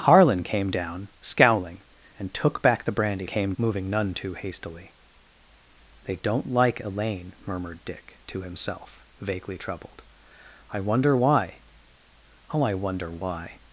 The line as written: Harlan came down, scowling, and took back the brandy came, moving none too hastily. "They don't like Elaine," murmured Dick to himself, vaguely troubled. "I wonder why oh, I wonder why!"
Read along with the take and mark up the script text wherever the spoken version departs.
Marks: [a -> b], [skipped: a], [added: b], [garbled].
Harlan came down, scowling, and took back the brandy came, moving none too hastily. "They don't like Elaine," murmured Dick to himself, vaguely troubled. "I wonder why oh, I wonder why!"